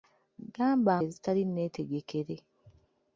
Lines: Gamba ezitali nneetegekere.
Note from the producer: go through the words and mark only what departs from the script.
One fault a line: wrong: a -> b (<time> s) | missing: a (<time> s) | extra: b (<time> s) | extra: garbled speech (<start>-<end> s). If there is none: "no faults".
no faults